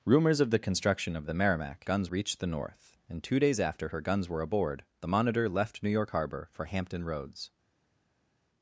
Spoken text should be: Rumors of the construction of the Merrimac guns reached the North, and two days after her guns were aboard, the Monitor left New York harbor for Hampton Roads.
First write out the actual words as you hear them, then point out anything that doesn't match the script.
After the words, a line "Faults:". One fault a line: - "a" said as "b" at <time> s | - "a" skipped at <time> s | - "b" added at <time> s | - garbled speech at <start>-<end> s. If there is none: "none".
Rumors of the construction of the Merrimac guns reached the North, and two days after her guns were aboard, the Monitor left New York harbor for Hampton Roads.
Faults:
none